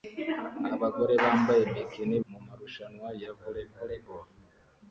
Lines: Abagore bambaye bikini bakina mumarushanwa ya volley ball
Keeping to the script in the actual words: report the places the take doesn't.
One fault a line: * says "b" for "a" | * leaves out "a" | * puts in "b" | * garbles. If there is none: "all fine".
* leaves out "bakina"
* puts in "volley"